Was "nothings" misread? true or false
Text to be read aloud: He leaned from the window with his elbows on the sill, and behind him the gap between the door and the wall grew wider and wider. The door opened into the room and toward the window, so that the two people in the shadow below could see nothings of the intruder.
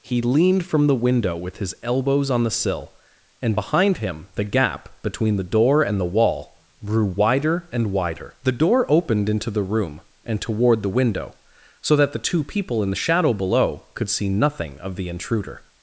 true